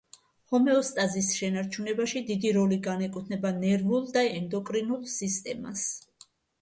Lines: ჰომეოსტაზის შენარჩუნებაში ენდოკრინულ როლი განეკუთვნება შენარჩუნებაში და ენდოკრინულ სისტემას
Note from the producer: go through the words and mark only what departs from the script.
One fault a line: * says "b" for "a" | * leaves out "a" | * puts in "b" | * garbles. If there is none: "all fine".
* says "დიდი" for "ენდოკრინულ"
* says "ნერვულ" for "შენარჩუნებაში"